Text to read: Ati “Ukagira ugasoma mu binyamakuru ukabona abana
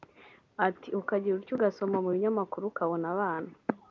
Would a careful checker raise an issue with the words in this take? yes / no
yes